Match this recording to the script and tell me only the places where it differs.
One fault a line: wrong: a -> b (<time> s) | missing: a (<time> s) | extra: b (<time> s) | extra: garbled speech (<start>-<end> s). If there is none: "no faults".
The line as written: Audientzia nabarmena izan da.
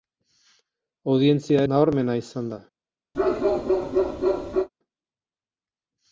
no faults